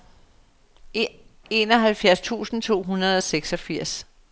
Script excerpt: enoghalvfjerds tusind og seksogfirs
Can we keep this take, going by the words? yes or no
no